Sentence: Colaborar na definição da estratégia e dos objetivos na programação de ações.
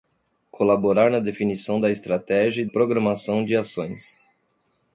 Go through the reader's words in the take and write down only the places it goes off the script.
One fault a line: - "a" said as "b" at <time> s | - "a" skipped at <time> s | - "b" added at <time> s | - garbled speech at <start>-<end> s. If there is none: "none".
- "dos objetivos na" skipped at 2.7 s